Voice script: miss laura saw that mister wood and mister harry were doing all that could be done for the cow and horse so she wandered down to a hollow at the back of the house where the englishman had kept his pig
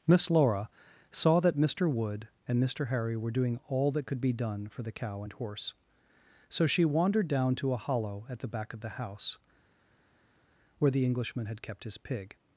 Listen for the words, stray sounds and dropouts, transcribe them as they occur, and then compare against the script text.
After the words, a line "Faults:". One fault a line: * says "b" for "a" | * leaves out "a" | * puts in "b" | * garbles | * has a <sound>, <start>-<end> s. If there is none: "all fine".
miss laura saw that mister wood and mister harry were doing all that could be done for the cow and horse so she wandered down to a hollow at the back of the house where the englishman had kept his pig
Faults:
all fine